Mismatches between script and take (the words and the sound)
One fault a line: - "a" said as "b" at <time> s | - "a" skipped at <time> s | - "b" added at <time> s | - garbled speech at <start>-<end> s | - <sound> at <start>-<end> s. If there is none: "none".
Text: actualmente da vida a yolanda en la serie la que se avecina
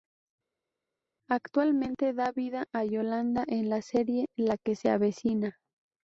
none